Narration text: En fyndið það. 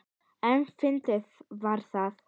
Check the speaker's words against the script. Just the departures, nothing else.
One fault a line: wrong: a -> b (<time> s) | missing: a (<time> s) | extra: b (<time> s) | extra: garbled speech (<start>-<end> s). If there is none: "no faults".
extra: var (1.6 s)